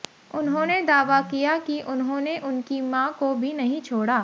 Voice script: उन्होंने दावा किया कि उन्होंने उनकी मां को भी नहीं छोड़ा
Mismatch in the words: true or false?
false